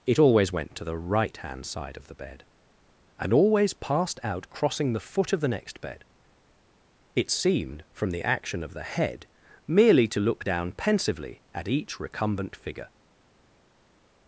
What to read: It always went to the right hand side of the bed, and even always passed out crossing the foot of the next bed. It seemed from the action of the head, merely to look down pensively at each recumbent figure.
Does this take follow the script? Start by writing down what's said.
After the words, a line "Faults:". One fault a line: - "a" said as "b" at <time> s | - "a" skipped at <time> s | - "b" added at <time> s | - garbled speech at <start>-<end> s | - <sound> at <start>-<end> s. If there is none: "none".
It always went to the right hand side of the bed, and always passed out crossing the foot of the next bed. It seemed from the action of the head, merely to look down pensively at each recumbent figure.
Faults:
- "even" skipped at 3.3 s